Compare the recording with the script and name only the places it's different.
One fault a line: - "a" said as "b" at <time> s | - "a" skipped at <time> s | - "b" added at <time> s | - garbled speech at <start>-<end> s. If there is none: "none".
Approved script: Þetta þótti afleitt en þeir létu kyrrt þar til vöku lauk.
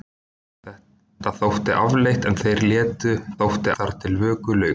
- "kyrrt" said as "þótti" at 3.4 s